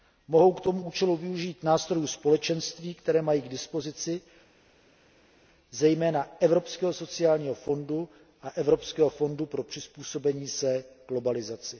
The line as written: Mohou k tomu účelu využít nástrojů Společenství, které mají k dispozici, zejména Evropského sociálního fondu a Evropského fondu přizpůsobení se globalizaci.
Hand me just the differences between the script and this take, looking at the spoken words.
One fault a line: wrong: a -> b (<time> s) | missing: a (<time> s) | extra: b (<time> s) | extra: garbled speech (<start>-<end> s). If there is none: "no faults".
extra: pro (9.5 s)